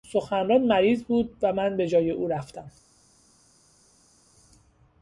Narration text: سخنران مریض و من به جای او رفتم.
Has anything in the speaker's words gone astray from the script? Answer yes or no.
yes